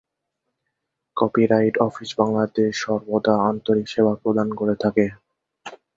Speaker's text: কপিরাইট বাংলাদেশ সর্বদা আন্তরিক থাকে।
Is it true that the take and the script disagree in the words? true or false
true